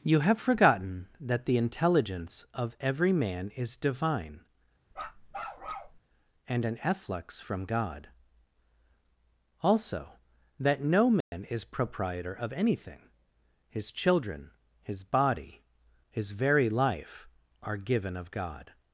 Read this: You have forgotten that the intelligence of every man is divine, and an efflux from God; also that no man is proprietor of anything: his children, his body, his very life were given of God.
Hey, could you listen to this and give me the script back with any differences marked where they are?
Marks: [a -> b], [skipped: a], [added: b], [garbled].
You have forgotten that the intelligence of every man is divine, and an efflux from God; also that no man is proprietor of anything: his children, his body, his very life [were -> are] given of God.